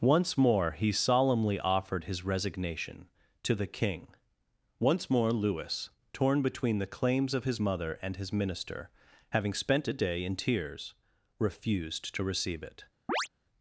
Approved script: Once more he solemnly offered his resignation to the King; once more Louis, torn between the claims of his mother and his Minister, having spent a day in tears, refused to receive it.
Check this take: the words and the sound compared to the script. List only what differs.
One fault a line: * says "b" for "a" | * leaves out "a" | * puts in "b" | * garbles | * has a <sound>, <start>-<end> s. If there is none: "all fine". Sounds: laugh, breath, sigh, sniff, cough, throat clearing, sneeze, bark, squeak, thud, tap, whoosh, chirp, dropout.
* has a chirp, 13.1-13.3 s